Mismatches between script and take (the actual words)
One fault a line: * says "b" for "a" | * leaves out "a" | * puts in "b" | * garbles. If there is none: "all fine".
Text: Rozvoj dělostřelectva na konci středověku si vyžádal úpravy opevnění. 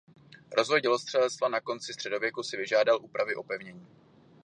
all fine